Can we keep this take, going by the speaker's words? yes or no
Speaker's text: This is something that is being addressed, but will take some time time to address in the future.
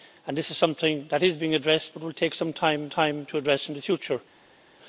yes